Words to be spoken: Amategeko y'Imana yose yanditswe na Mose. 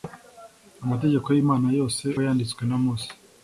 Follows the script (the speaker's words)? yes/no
yes